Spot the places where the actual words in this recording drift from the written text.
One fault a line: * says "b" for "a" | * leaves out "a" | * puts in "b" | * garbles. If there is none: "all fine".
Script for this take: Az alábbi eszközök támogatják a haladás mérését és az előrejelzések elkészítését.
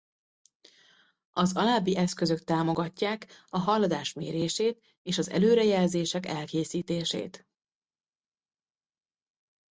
all fine